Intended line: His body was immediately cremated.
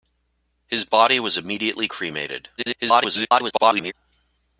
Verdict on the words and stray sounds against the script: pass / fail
fail